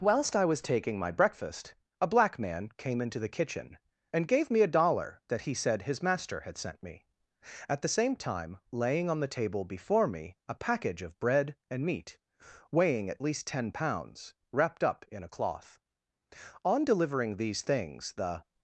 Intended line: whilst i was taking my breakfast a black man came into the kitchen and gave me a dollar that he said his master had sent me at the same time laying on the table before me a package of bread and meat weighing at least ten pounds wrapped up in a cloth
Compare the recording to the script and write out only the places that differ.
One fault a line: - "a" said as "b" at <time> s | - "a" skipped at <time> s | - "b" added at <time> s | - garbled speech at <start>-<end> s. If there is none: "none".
- "on delivering these things the" added at 16.6 s